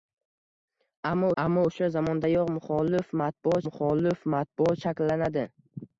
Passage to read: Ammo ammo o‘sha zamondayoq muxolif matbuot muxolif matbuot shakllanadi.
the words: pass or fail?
pass